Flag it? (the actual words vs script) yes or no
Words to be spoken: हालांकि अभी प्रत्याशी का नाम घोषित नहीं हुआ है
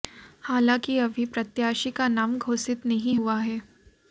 no